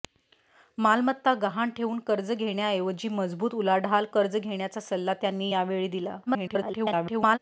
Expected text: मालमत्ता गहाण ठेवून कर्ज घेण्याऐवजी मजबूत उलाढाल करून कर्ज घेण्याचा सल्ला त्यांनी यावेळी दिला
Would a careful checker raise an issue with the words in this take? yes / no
yes